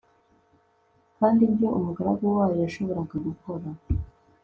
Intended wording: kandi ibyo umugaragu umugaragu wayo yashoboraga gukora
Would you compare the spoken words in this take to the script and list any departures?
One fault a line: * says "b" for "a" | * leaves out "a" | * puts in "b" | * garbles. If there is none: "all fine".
* leaves out "umugaragu"